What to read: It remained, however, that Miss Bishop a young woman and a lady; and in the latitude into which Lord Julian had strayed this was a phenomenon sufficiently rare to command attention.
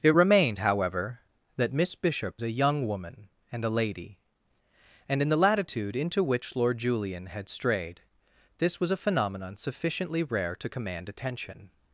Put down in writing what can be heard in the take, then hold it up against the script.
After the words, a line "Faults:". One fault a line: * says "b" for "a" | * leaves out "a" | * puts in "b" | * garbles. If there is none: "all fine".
It remained, however, that Miss Bishop a young woman and a lady; and in the latitude into which Lord Julian had strayed this was a phenomenon sufficiently rare to command attention.
Faults:
all fine